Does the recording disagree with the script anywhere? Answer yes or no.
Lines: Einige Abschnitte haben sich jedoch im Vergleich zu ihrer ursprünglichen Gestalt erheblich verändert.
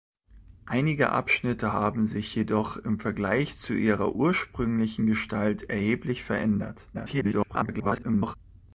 yes